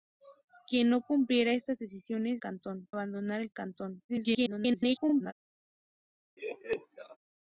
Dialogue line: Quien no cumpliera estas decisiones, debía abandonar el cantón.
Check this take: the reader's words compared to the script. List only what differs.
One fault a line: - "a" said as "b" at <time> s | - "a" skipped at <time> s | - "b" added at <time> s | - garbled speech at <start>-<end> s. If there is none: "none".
- "debía" said as "cantón" at 2.4 s
- garbled speech at 4.1-5.3 s